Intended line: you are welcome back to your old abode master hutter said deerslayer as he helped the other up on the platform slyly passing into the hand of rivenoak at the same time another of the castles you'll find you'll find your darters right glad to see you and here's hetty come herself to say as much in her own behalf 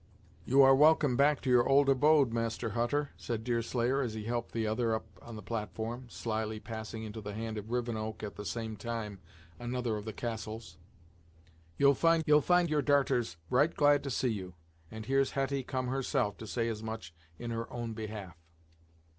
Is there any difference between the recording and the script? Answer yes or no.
no